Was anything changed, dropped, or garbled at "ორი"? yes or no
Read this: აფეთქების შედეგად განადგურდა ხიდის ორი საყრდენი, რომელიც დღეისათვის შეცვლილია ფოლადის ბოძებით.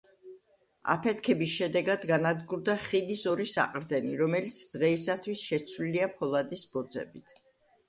no